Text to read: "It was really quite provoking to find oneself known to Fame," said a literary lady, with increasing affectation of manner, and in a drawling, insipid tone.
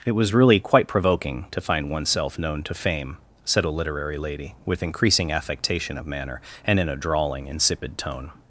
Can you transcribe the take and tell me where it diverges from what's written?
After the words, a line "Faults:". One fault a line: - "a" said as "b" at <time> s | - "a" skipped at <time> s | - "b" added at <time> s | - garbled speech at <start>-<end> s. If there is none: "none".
"It was really quite provoking to find oneself known to Fame," said a literary lady, with increasing affectation of manner, and in a drawling, insipid tone.
Faults:
none